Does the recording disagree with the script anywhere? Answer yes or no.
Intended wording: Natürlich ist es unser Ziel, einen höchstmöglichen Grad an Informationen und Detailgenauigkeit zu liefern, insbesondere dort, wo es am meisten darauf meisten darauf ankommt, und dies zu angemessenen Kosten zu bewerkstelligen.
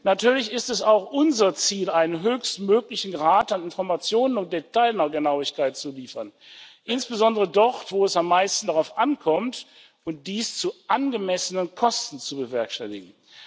yes